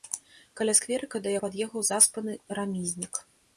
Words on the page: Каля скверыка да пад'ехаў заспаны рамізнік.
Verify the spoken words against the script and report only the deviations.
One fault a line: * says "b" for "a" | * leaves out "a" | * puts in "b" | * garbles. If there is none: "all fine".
all fine